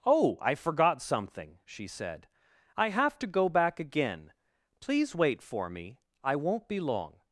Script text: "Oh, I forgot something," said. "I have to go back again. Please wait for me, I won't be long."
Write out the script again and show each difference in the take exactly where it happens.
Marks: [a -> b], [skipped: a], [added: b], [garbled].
"Oh, I forgot something," [added: she] said. "I have to go back again. Please wait for me, I won't be long."